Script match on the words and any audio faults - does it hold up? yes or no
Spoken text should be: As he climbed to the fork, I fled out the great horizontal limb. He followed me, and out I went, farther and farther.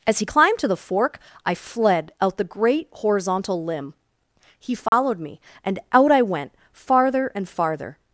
no